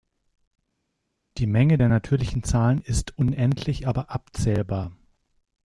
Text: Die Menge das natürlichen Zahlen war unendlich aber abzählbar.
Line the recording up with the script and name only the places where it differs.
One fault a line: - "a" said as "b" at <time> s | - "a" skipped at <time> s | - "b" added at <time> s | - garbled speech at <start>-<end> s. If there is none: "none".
- "das" said as "der" at 1.7 s
- "war" said as "ist" at 2.8 s